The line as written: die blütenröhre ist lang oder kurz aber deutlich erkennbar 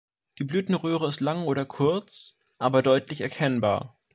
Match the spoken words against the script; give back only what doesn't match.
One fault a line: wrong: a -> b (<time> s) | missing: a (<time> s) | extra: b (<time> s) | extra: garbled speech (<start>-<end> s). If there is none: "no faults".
no faults